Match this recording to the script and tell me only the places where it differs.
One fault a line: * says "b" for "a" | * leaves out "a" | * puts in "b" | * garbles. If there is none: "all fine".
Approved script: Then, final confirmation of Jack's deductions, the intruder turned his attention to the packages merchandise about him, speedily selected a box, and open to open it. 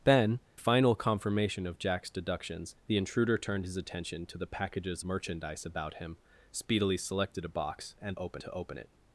all fine